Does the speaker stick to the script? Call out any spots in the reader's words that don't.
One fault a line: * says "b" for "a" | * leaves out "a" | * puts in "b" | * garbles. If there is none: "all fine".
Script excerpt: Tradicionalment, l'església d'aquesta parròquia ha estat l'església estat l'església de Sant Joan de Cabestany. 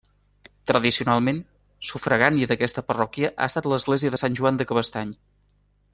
* says "sufragània" for "l'església"
* leaves out "estat l'església"